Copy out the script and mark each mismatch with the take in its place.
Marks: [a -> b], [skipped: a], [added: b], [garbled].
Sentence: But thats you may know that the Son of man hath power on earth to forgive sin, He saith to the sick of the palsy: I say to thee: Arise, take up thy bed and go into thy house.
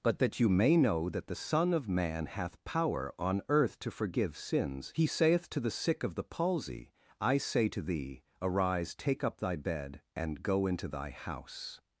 But [thats -> that] you may know that the Son of man hath power on earth to forgive [sin, -> sins] He saith to the sick of the palsy: I say to thee: Arise, take up thy bed and go into thy house.